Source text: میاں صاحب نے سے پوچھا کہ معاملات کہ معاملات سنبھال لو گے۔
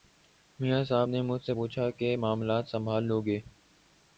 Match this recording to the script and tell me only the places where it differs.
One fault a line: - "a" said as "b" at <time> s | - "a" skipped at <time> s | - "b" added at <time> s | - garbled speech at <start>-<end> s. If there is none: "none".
- "مجھ" added at 1.2 s
- "کہ معاملات" skipped at 2.7 s